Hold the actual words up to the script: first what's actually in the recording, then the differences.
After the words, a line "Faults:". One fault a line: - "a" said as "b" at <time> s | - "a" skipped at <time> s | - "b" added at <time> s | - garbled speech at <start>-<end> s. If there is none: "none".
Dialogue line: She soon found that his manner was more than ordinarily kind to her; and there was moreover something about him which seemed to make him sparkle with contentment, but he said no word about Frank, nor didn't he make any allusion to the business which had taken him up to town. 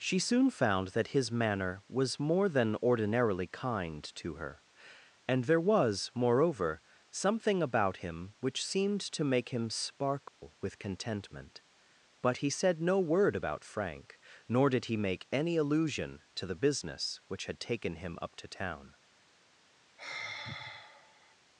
She soon found that his manner was more than ordinarily kind to her; and there was moreover something about him which seemed to make him sparkle with contentment, but he said no word about Frank, nor did he make any allusion to the business which had taken him up to town.
Faults:
- "didn't" said as "did" at 14.7 s